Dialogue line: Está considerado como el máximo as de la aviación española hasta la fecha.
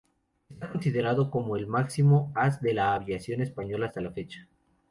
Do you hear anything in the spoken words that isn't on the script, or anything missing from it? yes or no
no